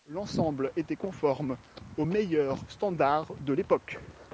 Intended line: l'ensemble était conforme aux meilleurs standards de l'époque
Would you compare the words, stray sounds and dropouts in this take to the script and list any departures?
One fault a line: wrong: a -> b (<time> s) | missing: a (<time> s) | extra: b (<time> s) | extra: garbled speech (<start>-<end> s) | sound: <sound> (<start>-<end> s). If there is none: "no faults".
no faults